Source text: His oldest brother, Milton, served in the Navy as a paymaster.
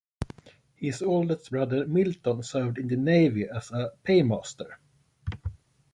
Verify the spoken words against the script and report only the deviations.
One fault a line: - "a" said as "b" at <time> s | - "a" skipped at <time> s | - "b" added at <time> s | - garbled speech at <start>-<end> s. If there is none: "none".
none